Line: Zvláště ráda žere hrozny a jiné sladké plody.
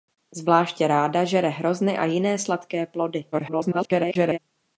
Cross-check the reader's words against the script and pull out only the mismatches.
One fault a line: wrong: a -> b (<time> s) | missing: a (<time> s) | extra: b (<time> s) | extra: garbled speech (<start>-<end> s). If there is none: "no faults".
extra: garbled speech (3.3-4.4 s)